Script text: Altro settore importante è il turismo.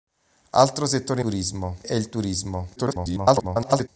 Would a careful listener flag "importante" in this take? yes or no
yes